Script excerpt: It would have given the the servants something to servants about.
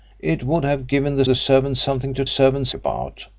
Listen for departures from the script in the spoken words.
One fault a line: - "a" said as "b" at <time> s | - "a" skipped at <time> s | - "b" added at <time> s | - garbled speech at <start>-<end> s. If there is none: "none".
none